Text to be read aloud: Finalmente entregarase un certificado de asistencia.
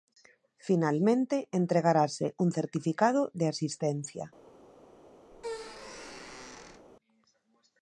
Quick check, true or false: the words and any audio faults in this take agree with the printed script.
false